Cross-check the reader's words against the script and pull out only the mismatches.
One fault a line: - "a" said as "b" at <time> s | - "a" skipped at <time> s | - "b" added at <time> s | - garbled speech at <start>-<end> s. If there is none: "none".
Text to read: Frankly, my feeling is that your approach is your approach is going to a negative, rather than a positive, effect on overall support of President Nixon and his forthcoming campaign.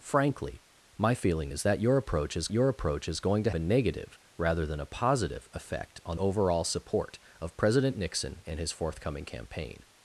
none